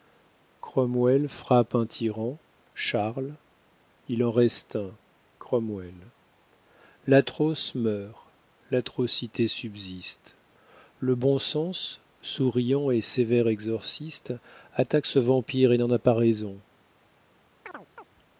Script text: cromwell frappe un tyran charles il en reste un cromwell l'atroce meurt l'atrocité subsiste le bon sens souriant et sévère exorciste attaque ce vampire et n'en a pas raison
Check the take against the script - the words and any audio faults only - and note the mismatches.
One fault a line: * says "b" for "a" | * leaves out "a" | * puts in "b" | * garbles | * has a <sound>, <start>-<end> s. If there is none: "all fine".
* has a chirp, 17.6-18.1 s